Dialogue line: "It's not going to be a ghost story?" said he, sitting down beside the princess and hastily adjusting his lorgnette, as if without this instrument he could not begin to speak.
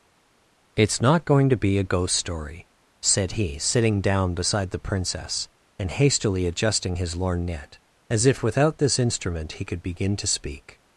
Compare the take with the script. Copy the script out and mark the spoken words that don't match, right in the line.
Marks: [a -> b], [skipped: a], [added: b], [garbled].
"It's not going to be a ghost story?" said he, sitting down beside the princess and hastily adjusting his lorgnette, as if without this instrument he could [skipped: not] begin to speak.